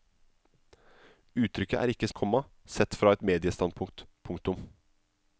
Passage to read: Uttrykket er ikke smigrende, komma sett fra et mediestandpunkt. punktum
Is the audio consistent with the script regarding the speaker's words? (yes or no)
no